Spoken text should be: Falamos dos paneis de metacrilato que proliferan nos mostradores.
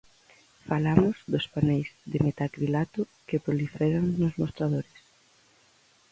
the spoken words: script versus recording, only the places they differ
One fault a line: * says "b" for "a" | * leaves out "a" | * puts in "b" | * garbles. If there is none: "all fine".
all fine